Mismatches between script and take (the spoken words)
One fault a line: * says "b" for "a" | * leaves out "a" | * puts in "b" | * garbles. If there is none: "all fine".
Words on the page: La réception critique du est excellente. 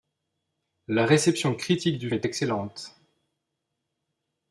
all fine